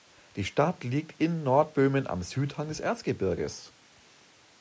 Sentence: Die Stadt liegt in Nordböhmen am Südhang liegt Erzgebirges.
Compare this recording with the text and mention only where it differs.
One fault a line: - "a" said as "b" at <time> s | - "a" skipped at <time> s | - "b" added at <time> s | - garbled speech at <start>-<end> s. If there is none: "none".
- "liegt" said as "des" at 2.7 s